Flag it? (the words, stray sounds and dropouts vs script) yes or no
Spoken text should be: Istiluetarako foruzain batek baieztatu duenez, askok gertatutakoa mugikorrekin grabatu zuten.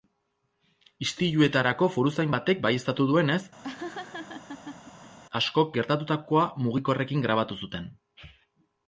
yes